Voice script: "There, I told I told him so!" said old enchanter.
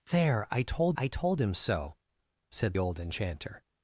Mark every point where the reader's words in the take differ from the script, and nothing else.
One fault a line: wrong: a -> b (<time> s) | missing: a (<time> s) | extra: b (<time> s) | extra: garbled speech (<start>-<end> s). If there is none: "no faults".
no faults